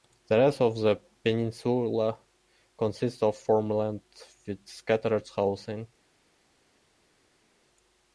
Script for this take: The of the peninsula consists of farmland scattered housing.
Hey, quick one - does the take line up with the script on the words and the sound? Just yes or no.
no